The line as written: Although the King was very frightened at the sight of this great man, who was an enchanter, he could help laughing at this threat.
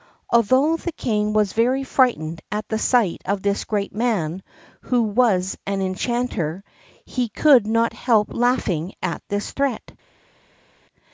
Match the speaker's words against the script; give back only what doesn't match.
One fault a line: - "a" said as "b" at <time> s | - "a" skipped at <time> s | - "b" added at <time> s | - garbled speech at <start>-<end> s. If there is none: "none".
- "not" added at 7.7 s